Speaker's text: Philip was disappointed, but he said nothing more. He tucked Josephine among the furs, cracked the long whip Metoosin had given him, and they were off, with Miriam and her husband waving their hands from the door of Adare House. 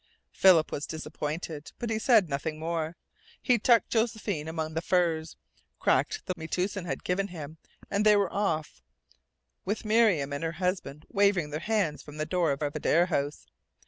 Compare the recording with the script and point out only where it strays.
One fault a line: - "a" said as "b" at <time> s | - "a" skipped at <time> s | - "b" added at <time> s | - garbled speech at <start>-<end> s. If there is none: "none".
- "long whip" skipped at 6.3 s
- "of" added at 12.6 s